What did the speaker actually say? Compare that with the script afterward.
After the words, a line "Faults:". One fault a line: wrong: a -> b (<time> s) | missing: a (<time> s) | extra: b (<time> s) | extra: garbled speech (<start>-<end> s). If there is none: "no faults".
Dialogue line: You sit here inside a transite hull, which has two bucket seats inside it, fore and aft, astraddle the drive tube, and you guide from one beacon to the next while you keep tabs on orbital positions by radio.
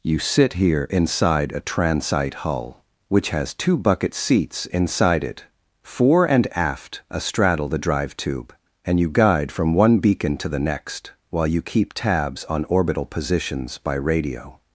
You sit here inside a transite hull, which has two bucket seats inside it, fore and aft, astraddle the drive tube, and you guide from one beacon to the next while you keep tabs on orbital positions by radio.
Faults:
no faults